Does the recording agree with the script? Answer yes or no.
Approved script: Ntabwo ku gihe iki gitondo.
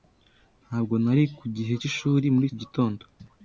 no